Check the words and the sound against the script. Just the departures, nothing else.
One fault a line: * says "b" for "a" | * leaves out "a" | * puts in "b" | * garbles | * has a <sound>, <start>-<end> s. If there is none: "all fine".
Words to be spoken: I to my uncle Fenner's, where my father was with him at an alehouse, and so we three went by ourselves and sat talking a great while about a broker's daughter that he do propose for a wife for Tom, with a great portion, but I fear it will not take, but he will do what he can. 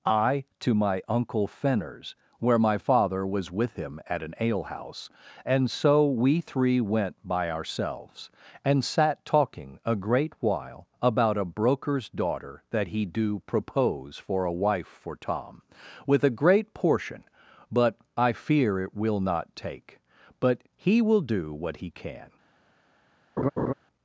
* has a laugh, 23.4-23.7 s